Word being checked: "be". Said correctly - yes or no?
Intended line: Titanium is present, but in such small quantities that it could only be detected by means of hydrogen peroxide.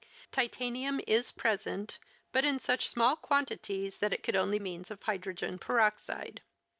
no